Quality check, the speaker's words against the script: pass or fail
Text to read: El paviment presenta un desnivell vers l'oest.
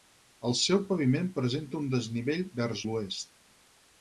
fail